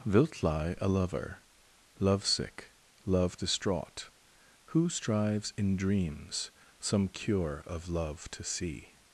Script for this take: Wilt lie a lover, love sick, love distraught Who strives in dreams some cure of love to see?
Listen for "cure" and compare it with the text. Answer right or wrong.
right